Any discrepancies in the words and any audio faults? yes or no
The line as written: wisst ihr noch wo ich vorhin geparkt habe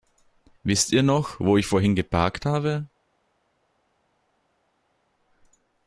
no